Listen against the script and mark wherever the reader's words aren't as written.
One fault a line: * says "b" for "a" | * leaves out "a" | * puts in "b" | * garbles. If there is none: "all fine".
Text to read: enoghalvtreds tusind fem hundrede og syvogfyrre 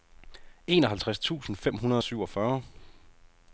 all fine